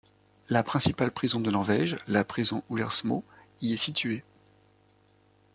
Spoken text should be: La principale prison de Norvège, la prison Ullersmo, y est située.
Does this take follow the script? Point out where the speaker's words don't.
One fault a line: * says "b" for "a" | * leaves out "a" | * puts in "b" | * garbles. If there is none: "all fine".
all fine